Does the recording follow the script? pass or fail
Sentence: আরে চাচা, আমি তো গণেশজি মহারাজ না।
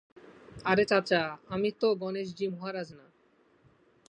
pass